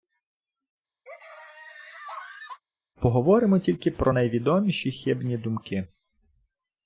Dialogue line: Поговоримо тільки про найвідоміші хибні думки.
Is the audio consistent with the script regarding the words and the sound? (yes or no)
no